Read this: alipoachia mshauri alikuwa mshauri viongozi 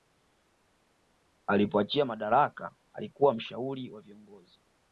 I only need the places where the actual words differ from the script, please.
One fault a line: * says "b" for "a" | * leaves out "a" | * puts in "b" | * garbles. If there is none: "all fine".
* says "madaraka" for "mshauri"
* puts in "wa"